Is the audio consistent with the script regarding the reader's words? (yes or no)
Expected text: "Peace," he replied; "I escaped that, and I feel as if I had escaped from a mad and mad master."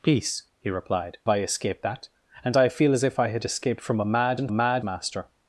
yes